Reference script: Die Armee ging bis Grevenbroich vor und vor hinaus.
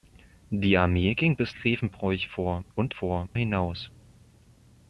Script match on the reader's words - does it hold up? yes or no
yes